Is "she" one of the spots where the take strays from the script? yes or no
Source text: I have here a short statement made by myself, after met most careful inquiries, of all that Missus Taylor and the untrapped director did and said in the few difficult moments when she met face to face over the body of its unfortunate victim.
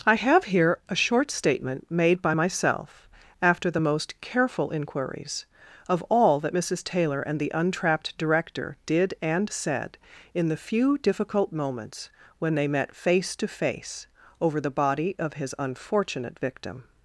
yes